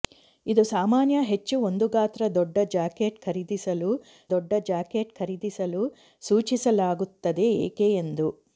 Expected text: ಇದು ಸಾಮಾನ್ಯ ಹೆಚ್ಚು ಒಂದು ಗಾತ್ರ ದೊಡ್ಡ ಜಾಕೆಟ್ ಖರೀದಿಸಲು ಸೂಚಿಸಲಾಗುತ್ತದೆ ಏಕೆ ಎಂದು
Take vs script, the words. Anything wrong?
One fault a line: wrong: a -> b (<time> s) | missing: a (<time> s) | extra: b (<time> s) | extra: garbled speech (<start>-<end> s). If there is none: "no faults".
extra: ದೊಡ್ಡ ಜಾಕೆಟ್ ಖರೀದಿಸಲು (4.3 s)